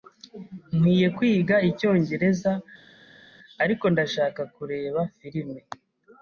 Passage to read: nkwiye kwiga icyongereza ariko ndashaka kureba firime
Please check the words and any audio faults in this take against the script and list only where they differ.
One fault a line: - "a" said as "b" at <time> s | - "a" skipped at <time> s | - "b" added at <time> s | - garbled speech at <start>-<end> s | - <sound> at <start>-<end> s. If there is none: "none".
none